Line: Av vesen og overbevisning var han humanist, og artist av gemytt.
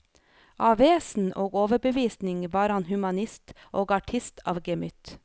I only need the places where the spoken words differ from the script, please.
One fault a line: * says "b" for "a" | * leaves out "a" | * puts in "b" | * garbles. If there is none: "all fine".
all fine